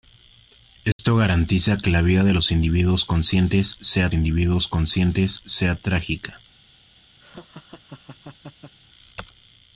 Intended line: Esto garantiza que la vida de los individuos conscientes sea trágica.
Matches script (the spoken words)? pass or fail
fail